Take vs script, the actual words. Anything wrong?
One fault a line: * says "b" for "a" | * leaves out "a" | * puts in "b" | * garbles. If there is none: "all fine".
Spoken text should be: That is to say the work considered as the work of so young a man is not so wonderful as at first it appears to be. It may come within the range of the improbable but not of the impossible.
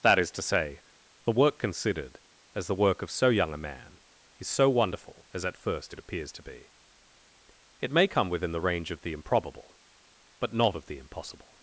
* leaves out "not"